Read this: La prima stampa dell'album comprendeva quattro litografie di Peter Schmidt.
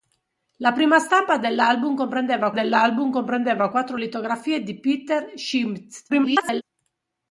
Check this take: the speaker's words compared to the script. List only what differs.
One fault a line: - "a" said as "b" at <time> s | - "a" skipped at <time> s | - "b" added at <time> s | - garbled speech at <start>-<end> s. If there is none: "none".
- "dell'album comprendeva" added at 2.5 s
- garbled speech at 6.1-6.6 s